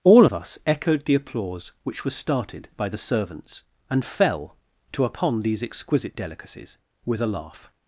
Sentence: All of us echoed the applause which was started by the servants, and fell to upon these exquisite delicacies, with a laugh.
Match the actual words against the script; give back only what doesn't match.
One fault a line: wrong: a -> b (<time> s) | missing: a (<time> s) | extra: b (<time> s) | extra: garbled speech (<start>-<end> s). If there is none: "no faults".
no faults